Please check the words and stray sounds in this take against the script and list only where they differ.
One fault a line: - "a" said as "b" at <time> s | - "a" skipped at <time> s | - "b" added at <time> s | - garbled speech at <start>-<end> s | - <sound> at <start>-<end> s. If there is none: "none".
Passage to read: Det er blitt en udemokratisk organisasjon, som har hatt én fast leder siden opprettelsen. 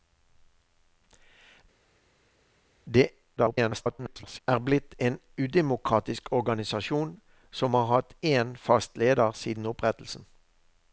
- garbled speech at 3.4-4.4 s